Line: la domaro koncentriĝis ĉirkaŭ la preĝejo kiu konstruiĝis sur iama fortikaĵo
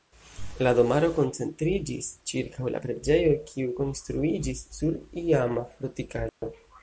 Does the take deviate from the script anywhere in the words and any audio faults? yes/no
yes